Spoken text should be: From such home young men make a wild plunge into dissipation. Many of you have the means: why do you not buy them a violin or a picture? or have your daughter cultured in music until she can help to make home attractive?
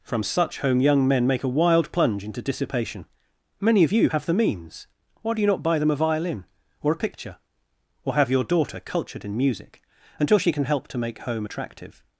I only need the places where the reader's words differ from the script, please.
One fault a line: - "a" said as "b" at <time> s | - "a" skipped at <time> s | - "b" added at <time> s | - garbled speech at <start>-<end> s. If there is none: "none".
none